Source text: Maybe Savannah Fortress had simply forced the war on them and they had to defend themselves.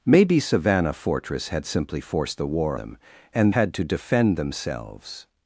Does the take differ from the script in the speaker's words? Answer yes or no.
yes